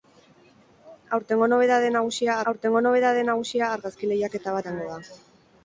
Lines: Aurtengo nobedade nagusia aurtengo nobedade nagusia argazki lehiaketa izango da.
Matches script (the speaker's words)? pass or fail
pass